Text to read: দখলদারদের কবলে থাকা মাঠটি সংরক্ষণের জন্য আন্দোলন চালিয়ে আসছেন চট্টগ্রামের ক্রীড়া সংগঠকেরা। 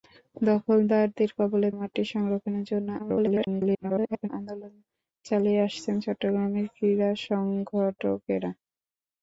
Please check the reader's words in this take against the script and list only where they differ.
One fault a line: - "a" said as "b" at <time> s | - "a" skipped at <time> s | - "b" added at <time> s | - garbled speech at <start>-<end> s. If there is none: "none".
- "থাকা" skipped at 1.7 s
- garbled speech at 3.0-4.3 s